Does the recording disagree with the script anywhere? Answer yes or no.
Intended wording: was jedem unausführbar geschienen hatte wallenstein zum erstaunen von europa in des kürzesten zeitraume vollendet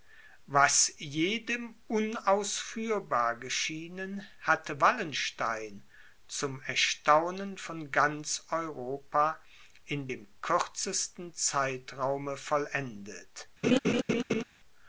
yes